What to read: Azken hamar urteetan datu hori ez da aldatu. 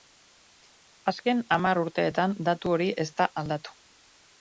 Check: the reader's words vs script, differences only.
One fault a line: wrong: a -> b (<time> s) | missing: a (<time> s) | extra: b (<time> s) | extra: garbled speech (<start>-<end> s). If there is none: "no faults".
no faults